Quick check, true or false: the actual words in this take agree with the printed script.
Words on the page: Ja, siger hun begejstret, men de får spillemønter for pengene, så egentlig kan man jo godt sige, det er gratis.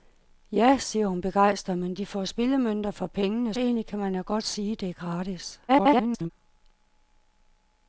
false